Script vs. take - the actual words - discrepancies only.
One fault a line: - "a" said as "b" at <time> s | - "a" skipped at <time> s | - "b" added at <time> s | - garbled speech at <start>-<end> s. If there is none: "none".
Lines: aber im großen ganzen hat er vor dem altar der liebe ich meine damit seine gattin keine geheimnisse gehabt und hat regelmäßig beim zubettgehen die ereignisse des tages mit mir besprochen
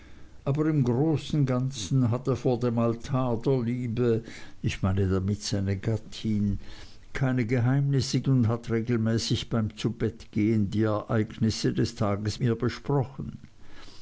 - "gehabt" skipped at 8.2 s
- "mit" skipped at 12.4 s